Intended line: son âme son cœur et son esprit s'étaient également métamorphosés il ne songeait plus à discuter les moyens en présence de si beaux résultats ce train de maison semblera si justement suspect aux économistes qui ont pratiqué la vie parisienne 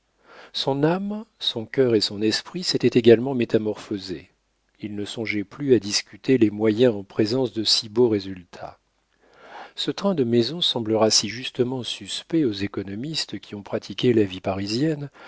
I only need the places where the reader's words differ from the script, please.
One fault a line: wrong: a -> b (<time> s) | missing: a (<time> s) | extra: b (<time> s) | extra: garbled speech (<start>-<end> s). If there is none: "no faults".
no faults